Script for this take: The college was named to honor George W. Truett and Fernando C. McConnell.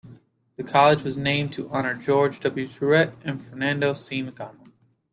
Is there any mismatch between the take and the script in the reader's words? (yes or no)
no